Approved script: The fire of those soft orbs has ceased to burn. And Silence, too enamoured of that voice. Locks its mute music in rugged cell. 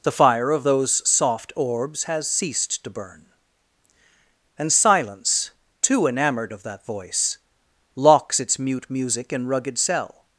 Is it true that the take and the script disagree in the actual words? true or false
false